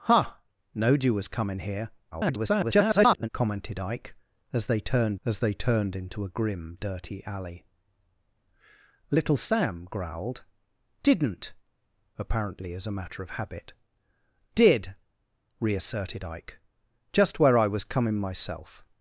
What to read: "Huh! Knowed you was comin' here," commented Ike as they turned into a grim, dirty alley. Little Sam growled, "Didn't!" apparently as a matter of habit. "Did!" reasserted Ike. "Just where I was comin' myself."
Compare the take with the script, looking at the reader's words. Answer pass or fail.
fail